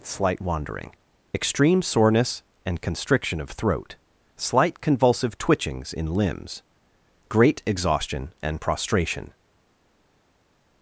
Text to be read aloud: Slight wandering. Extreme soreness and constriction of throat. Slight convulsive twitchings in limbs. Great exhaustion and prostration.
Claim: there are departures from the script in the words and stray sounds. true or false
false